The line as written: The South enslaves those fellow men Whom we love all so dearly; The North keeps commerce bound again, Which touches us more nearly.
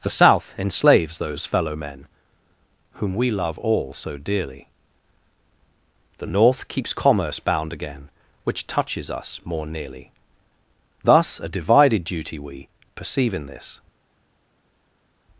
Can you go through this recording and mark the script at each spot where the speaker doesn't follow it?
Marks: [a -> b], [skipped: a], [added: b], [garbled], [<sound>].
The South enslaves those fellow men Whom we love all so dearly; The North keeps commerce bound again, Which touches us more nearly. [added: Thus a divided duty we Perceive in this]